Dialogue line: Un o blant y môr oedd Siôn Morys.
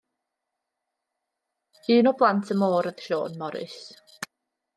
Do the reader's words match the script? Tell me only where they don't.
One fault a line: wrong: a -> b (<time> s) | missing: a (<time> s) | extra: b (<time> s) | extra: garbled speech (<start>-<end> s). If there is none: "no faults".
no faults